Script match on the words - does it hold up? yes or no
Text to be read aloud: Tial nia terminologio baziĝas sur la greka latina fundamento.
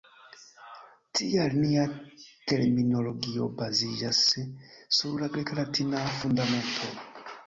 yes